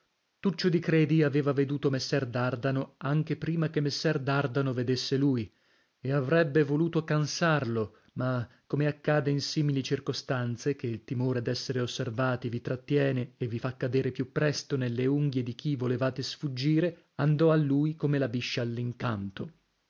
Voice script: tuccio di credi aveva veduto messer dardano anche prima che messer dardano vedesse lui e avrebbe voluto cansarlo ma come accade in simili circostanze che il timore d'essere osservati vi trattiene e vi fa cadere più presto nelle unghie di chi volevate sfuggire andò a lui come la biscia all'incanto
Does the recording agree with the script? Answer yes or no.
yes